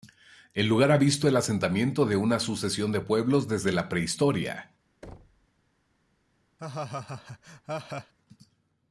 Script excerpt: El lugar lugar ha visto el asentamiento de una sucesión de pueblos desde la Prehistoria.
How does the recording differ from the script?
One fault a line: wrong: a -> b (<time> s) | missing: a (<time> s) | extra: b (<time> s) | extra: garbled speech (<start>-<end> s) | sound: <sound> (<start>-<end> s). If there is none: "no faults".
missing: lugar (0.9 s)
sound: thud (5.0-5.5 s)
sound: laugh (6.6-8.1 s)